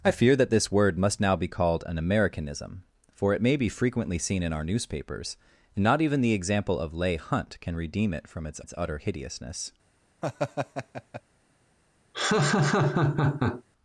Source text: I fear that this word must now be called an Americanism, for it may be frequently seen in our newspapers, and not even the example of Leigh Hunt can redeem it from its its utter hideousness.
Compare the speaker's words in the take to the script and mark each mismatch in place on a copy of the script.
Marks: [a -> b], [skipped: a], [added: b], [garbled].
I fear that this word must now be called an Americanism, for it may be frequently seen in our newspapers, and not even the example of Leigh Hunt can redeem it from its its utter hideousness.